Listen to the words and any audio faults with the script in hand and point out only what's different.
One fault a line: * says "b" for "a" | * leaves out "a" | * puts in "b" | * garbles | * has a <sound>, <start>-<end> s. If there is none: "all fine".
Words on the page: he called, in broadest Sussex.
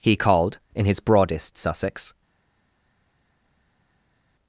* puts in "his"